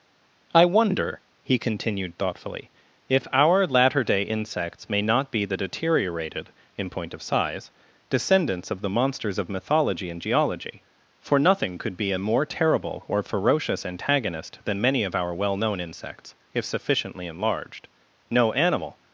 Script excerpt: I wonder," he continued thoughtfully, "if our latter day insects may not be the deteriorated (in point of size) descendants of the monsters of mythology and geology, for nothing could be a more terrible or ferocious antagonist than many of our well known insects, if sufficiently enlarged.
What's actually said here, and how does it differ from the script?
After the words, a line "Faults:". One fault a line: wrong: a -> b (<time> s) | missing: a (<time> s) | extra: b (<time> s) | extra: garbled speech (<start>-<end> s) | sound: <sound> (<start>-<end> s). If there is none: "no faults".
I wonder," he continued thoughtfully, "if our latter day insects may not be the deteriorated (in point of size) descendants of the monsters of mythology and geology, for nothing could be a more terrible or ferocious antagonist than many of our well known insects, if sufficiently enlarged. No animal
Faults:
extra: No animal (18.3 s)